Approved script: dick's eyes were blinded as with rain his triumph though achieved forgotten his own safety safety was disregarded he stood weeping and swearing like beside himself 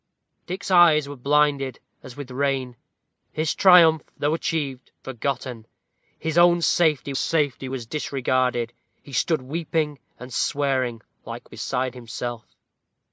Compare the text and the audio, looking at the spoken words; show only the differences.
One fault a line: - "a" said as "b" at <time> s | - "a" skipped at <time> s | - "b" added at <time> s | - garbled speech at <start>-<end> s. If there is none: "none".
none